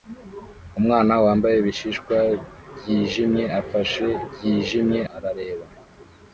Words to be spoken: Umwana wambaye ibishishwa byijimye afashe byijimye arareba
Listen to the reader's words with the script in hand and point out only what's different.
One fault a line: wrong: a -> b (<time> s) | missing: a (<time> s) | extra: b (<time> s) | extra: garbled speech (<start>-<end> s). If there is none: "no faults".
no faults